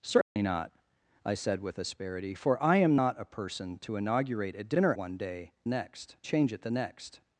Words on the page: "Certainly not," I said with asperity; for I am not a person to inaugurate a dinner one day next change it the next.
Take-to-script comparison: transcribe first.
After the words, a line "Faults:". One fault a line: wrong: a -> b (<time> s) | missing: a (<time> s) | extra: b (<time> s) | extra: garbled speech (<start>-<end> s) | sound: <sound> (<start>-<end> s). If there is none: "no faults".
"Certainly not," I said with asperity; for I am not a person to inaugurate a dinner one day next change it the next.
Faults:
sound: dropout (0.2-0.4 s)